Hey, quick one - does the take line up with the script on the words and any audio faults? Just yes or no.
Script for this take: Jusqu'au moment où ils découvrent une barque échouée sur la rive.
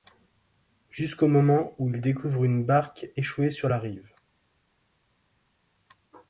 yes